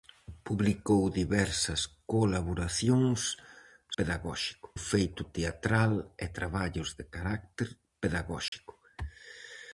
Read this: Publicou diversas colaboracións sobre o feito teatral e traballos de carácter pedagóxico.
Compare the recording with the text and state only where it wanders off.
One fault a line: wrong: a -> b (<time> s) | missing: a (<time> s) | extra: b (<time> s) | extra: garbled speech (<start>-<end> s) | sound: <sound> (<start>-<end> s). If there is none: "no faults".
wrong: sobre -> pedagóxico (4.0 s)
sound: dropout (8.5-8.5 s)